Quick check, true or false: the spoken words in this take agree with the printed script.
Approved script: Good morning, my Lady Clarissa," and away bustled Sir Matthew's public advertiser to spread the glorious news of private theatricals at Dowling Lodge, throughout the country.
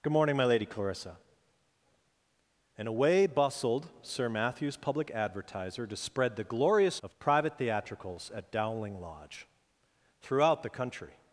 false